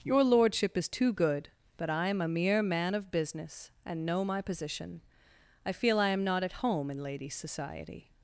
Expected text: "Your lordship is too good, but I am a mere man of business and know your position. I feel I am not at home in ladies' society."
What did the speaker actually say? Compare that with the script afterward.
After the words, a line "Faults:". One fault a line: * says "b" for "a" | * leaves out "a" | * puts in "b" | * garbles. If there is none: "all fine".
"Your lordship is too good, but I am a mere man of business and know my position. I feel I am not at home in ladies' society."
Faults:
* says "my" for "your"